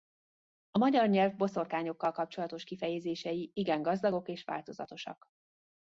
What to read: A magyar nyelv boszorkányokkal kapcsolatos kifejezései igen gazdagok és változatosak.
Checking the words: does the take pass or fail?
pass